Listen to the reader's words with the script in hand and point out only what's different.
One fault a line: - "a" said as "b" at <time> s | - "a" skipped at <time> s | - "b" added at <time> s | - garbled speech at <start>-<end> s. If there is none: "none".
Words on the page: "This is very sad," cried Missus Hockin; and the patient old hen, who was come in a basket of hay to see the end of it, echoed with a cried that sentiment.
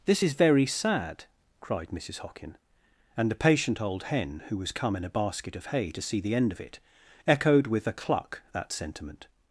- "cried" said as "cluck" at 7.9 s